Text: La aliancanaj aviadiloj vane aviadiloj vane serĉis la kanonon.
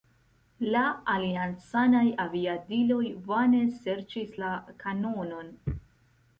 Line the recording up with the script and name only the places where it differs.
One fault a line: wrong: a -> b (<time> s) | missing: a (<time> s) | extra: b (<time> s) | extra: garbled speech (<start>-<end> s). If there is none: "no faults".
missing: aviadiloj vane (3.6 s)